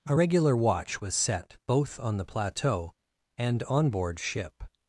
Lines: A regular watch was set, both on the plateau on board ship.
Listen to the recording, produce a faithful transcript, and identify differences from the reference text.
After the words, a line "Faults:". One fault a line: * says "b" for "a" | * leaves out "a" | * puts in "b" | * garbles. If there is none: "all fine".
A regular watch was set, both on the plateau and on board ship.
Faults:
* puts in "and"